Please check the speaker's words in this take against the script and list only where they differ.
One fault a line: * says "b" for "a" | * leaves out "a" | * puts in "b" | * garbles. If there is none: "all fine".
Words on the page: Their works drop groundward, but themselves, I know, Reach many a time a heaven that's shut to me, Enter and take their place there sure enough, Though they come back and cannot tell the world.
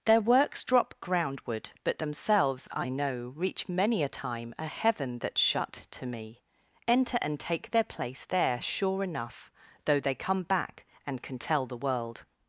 * says "can" for "cannot"